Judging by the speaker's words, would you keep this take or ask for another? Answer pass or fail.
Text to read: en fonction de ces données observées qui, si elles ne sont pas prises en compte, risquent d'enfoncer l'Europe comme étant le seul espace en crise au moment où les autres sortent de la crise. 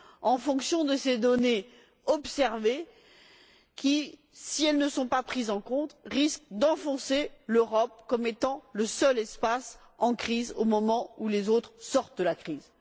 pass